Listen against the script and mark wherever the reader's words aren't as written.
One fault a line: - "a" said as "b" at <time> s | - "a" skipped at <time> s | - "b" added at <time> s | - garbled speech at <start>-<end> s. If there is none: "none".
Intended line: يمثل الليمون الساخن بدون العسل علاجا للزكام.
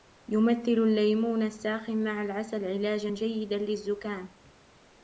- "بدون" said as "مع" at 2.0 s
- "جيدا" added at 3.1 s